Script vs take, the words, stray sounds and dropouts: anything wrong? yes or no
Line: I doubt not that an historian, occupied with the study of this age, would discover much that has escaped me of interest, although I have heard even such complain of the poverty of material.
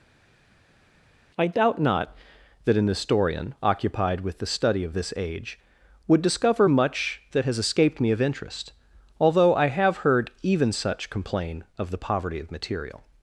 no